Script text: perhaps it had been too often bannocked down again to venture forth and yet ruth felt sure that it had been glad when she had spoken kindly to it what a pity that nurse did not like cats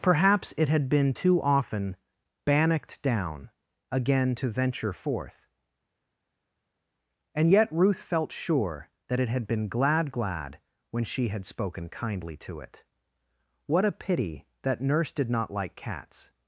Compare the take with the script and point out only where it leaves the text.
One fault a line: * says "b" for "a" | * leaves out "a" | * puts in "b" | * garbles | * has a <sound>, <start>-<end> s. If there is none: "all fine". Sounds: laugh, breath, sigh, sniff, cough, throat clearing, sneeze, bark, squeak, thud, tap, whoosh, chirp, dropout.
* puts in "glad"